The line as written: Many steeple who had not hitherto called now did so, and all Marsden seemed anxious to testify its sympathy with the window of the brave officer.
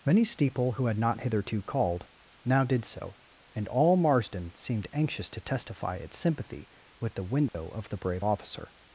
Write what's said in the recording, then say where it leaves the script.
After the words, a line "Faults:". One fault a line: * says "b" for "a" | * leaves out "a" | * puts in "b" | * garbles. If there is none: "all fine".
Many steeple who had not hitherto called now did so, and all Marsden seemed anxious to testify its sympathy with the window of the brave officer.
Faults:
all fine